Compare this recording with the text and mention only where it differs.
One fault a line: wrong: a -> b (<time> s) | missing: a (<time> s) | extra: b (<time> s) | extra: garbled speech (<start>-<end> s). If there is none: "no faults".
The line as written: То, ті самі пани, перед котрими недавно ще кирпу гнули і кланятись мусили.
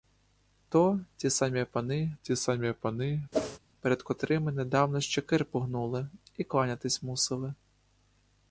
extra: ті самі пани (2.2 s)